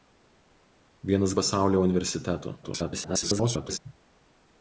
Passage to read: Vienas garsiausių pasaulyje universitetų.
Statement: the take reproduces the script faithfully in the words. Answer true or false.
false